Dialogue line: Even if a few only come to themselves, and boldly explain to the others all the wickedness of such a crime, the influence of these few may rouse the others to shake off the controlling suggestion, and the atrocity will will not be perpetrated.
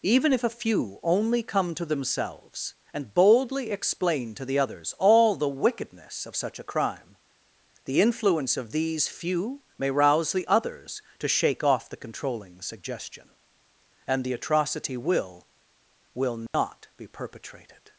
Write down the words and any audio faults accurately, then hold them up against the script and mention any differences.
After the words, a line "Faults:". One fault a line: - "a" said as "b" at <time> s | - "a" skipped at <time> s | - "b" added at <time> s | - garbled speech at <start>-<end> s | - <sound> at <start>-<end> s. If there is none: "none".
Even if a few only come to themselves, and boldly explain to the others all the wickedness of such a crime, the influence of these few may rouse the others to shake off the controlling suggestion, and the atrocity will will not be perpetrated.
Faults:
- dropout at 16.5-16.5 s